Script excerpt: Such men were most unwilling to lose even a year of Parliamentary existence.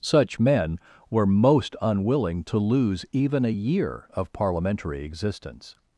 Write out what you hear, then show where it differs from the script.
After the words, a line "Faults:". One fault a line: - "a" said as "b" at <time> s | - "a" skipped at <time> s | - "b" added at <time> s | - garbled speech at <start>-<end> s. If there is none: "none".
Such men were most unwilling to lose even a year of Parliamentary existence.
Faults:
none